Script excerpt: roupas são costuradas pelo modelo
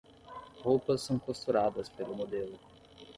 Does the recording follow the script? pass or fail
pass